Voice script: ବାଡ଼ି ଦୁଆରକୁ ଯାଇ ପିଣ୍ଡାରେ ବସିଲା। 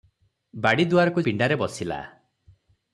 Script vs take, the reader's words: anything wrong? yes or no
yes